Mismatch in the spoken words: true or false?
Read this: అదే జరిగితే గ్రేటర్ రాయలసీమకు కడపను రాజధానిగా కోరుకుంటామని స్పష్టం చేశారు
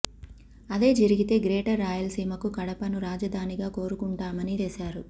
true